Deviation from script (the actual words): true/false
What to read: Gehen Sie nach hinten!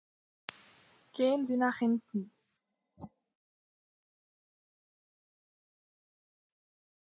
false